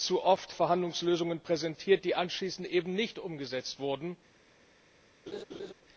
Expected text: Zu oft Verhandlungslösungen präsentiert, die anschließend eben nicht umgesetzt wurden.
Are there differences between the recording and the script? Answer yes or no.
no